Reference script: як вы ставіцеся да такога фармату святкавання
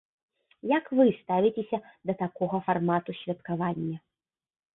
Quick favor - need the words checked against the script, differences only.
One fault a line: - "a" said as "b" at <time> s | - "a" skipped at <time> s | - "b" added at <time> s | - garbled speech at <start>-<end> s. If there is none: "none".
none